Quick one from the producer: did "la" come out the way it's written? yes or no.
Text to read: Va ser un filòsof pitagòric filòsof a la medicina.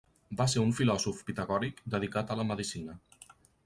yes